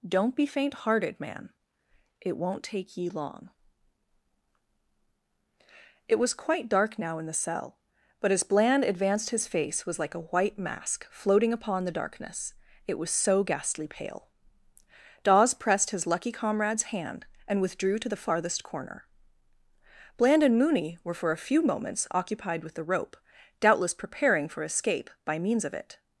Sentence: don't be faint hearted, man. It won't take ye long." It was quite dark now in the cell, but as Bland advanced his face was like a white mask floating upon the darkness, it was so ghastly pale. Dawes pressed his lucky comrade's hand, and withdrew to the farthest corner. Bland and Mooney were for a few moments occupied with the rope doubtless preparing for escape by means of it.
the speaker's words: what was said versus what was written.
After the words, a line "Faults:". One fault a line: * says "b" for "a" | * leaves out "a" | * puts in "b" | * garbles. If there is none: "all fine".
don't be faint hearted, man. It won't take ye long." It was quite dark now in the cell, but as Bland advanced his face was like a white mask floating upon the darkness, it was so ghastly pale. Dawes pressed his lucky comrade's hand, and withdrew to the farthest corner. Bland and Mooney were for a few moments occupied with the rope doubtless preparing for escape by means of it.
Faults:
all fine